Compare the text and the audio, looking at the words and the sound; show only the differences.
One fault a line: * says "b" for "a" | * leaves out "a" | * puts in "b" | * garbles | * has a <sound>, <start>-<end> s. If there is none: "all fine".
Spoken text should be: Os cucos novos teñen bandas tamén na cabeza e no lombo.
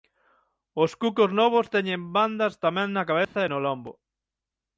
* has a dropout, 3.2-3.4 s